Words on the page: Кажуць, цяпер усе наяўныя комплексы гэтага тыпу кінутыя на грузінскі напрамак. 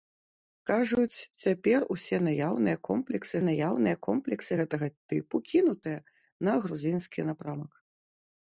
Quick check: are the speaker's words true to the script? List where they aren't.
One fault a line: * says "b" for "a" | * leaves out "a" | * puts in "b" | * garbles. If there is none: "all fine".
* puts in "наяўныя комплексы"